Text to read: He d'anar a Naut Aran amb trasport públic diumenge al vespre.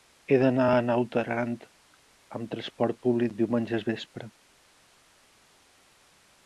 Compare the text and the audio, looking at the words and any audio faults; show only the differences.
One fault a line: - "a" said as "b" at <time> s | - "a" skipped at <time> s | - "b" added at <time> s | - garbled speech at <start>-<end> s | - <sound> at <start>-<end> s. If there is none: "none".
none